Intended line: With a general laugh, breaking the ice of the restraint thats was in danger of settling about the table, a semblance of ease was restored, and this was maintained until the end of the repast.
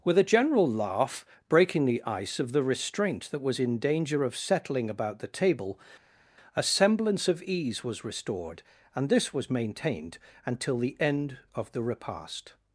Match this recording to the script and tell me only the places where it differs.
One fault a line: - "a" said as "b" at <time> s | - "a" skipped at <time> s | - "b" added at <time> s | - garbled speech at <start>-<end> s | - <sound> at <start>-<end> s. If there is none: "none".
- "thats" said as "that" at 3.3 s